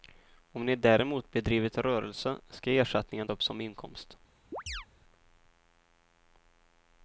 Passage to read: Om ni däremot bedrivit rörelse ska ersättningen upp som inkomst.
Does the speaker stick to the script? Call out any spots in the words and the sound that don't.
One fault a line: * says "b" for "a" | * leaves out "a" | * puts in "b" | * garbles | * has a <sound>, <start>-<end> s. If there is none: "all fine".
* has a chirp, 4.5-4.9 s